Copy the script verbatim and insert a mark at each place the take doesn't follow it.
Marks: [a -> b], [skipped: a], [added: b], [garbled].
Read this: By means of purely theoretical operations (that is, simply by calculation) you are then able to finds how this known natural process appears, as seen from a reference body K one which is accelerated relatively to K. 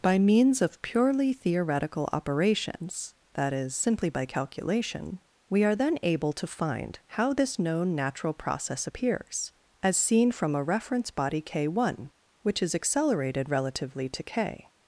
By means of purely theoretical operations (that is, simply by calculation) [you -> we] are then able to [finds -> find] how this known natural process appears, as seen from a reference body K one which is accelerated relatively to K.